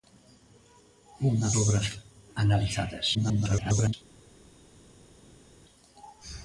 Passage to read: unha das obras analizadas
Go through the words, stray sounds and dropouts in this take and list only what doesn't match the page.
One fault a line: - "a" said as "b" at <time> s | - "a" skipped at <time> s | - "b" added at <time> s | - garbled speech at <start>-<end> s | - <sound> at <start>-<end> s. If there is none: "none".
- "das" skipped at 1.5 s
- garbled speech at 3.1-3.9 s